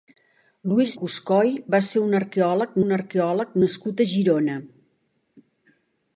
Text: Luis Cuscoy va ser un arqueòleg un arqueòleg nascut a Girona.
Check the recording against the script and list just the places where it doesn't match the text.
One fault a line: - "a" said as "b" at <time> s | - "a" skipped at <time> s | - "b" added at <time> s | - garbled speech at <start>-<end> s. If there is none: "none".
none